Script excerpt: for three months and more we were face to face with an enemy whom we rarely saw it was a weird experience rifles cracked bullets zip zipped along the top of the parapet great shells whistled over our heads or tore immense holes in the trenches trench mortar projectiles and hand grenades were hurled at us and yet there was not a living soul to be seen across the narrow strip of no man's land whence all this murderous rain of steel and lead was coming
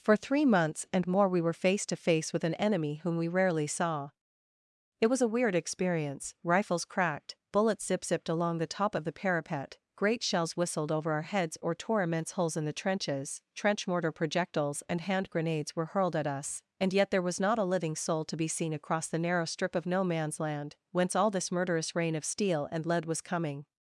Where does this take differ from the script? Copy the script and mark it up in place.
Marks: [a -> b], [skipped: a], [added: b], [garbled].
for three months and more we were face to face with an enemy whom we rarely saw it was a weird experience rifles cracked bullets zip zipped along the top of the parapet great shells whistled over our heads or tore immense holes in the trenches trench mortar projectiles and hand grenades were hurled at us and yet there was not a living soul to be seen across the narrow strip of no man's land whence all this murderous rain of steel and lead was coming